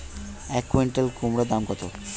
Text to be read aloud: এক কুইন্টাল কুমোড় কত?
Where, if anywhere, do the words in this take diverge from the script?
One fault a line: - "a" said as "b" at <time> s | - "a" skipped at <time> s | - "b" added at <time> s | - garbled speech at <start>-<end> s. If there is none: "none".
- "দাম" added at 1.5 s